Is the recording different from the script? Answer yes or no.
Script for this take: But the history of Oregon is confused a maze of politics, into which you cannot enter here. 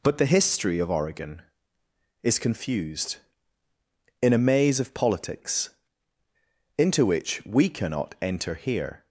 yes